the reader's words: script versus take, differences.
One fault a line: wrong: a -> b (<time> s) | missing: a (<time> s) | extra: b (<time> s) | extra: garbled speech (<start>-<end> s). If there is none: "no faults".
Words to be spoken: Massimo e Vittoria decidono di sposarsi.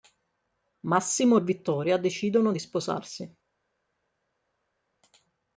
no faults